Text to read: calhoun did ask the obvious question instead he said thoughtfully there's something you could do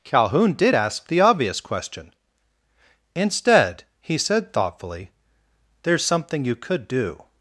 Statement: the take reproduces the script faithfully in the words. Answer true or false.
true